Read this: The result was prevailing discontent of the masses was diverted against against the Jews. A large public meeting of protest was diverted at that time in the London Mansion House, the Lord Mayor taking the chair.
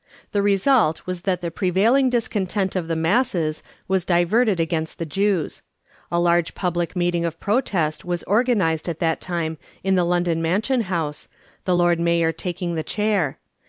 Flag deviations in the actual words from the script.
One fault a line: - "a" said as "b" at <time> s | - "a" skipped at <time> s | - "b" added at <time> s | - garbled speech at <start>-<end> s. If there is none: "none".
- "that the" added at 1.3 s
- "against" skipped at 5.0 s
- "diverted" said as "organised" at 8.2 s